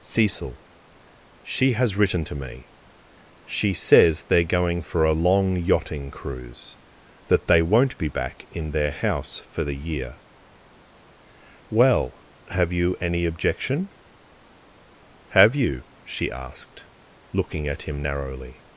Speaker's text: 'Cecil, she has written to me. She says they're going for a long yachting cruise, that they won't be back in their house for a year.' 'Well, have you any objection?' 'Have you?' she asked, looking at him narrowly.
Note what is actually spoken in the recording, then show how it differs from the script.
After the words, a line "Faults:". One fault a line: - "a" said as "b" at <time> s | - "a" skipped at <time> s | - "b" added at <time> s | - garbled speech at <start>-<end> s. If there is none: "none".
'Cecil, she has written to me. She says they're going for a long yachting cruise, that they won't be back in their house for the year.' 'Well, have you any objection?' 'Have you?' she asked, looking at him narrowly.
Faults:
- "a" said as "the" at 9.7 s